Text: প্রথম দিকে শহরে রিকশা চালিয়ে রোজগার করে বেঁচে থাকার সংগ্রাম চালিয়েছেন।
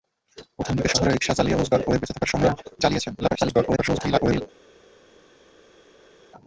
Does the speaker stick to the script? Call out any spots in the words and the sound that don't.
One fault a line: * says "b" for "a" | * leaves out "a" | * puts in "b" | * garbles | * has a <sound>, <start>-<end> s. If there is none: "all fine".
* garbles